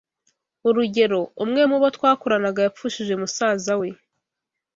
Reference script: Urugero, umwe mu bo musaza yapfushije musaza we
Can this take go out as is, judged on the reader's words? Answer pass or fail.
fail